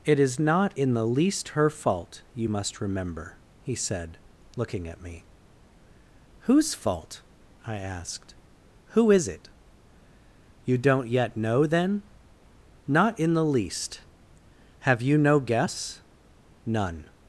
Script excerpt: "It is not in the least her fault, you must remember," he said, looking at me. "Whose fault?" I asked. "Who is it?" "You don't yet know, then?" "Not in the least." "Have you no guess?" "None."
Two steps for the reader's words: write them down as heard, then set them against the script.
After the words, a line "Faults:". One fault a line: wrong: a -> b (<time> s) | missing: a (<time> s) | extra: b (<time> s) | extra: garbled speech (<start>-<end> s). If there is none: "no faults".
"It is not in the least her fault, you must remember," he said, looking at me. "Whose fault?" I asked. "Who is it?" "You don't yet know, then?" "Not in the least." "Have you no guess?" "None."
Faults:
no faults